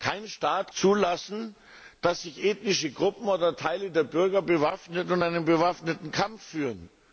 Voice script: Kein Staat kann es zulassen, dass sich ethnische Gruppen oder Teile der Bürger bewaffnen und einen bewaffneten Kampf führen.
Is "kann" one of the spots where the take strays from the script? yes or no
yes